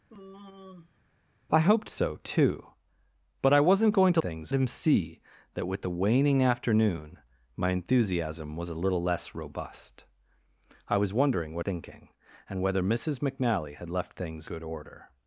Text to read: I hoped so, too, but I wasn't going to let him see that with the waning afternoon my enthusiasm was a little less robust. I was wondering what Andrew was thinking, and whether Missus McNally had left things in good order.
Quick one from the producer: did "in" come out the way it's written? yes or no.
no